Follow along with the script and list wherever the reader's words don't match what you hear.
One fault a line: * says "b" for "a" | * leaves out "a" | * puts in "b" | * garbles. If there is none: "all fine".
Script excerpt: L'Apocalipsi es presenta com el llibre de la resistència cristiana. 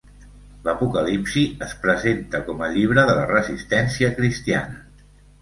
all fine